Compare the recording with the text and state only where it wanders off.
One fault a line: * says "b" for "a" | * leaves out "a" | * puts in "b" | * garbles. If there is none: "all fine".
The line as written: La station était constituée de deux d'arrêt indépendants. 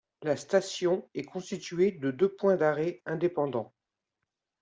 * says "est" for "était"
* puts in "points"